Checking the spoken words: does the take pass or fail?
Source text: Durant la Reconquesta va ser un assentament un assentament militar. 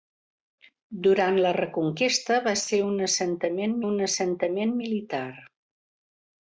pass